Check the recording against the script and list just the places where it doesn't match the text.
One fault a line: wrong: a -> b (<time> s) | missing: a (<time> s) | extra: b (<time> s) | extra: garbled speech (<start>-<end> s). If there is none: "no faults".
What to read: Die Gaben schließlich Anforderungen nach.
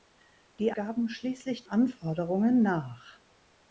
no faults